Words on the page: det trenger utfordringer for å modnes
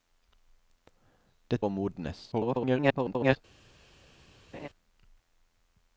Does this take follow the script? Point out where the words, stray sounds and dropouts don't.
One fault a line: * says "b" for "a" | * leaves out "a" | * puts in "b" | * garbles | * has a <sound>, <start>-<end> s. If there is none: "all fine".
* leaves out "trenger utfordringer for"
* garbles
* has a laugh, 4.5-4.7 s